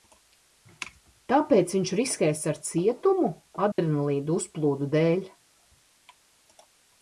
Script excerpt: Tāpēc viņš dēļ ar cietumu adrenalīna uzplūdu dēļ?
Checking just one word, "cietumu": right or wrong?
right